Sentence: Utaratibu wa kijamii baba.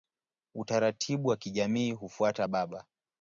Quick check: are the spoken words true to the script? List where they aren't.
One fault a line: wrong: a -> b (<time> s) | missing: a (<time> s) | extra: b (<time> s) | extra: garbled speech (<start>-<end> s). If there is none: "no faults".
extra: hufuata (1.9 s)